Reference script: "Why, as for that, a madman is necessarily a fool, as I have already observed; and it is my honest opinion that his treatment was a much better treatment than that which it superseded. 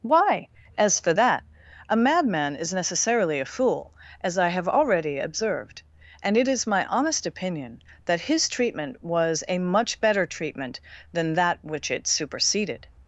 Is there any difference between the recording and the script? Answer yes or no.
no